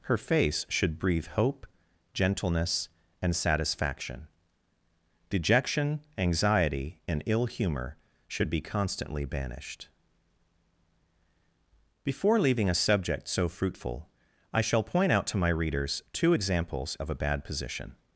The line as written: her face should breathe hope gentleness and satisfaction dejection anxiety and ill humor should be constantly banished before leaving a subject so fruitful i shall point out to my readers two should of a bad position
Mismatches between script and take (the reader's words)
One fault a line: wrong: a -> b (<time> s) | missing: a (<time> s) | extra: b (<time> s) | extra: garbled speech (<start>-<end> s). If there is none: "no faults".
wrong: should -> examples (16.3 s)